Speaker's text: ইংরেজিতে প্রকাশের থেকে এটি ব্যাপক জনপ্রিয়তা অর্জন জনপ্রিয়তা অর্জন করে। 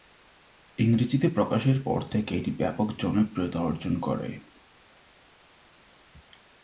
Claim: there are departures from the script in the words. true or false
true